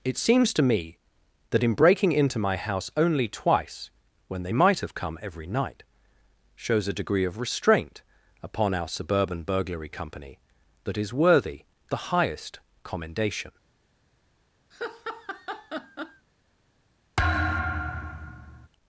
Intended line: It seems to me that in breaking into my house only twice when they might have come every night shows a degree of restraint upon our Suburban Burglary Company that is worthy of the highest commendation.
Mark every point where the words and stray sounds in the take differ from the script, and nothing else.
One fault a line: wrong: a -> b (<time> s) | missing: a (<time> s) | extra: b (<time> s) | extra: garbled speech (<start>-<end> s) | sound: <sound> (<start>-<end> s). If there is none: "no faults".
missing: of (11.6 s)
sound: laugh (14.7-16.3 s)
sound: thud (17.2-18.7 s)